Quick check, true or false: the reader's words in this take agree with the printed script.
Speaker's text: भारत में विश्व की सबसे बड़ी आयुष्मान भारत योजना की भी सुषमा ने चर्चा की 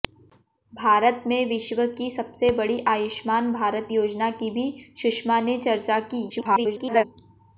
false